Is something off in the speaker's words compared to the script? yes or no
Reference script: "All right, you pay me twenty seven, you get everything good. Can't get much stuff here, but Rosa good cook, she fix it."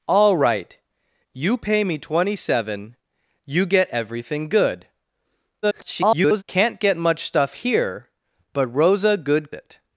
yes